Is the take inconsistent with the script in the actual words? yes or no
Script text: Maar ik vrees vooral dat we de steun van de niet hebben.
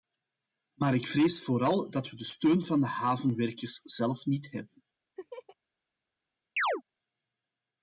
yes